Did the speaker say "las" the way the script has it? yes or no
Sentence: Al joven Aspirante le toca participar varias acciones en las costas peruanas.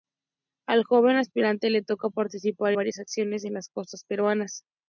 yes